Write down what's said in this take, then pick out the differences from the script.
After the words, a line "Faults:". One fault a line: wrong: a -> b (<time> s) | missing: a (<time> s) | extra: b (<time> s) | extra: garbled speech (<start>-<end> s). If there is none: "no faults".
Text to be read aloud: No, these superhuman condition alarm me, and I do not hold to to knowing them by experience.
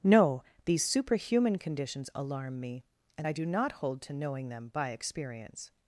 No, these superhuman conditions alarm me, and I do not hold to knowing them by experience.
Faults:
wrong: condition -> conditions (1.6 s)
missing: to (4.1 s)